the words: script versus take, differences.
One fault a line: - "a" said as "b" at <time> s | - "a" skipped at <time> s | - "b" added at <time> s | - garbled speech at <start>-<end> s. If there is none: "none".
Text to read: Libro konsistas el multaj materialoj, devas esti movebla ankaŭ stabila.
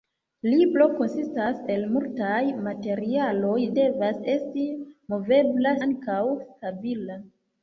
none